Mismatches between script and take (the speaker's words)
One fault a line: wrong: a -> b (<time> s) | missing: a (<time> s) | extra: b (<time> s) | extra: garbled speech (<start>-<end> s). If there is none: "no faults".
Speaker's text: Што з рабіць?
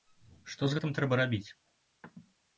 extra: гэтым трэба (0.7 s)